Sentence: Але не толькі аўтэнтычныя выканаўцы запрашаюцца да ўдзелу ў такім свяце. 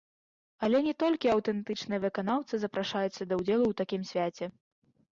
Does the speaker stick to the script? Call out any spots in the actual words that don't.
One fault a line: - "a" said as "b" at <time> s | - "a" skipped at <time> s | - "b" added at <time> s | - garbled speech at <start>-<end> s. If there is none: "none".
none